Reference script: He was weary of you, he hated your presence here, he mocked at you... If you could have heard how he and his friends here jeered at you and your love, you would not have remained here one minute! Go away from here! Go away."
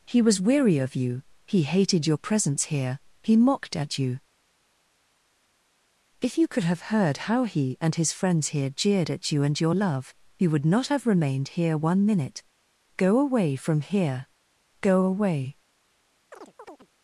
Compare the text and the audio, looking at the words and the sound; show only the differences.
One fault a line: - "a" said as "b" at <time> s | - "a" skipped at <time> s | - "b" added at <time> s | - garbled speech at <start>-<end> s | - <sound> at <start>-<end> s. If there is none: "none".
- chirp at 16.3-16.9 s